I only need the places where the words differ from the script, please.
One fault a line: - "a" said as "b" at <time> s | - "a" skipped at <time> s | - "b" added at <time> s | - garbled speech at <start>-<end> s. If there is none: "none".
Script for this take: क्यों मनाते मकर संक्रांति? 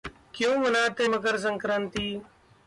none